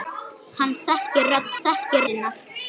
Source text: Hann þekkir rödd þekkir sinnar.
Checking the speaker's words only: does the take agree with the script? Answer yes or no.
yes